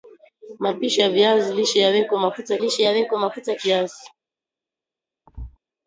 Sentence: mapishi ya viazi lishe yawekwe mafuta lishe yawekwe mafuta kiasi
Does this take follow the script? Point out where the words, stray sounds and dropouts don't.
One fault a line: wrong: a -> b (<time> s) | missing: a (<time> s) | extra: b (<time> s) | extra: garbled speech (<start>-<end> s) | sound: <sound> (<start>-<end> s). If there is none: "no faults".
sound: thud (5.3-5.6 s)